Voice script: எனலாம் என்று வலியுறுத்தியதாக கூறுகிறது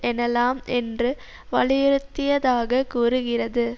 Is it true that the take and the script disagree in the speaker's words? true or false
false